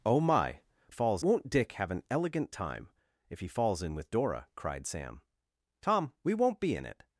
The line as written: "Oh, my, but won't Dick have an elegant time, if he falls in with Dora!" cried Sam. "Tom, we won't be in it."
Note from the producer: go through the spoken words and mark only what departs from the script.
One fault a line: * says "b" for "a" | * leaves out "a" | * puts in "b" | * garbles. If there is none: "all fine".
* says "falls" for "but"